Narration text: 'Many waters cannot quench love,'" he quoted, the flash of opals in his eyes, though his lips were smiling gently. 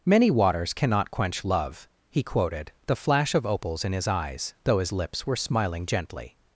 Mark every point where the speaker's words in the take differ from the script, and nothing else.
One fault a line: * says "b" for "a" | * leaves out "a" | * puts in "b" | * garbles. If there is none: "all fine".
all fine